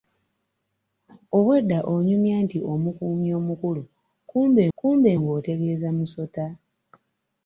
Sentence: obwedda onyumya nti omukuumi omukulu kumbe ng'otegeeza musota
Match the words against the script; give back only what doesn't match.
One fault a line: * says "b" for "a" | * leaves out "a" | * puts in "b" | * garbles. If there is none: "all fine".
* puts in "kumbe"